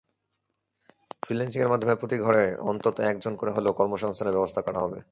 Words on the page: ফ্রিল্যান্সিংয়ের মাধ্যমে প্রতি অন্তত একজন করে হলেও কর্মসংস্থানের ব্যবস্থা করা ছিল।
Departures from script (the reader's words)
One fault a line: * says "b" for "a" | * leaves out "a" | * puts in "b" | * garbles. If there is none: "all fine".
* puts in "ঘরে"
* says "হবে" for "ছিল"